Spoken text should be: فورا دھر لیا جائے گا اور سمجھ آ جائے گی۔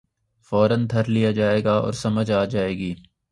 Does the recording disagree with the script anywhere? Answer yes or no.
no